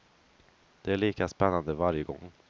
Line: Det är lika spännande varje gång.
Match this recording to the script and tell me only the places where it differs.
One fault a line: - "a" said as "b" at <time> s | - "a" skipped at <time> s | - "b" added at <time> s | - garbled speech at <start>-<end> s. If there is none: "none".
none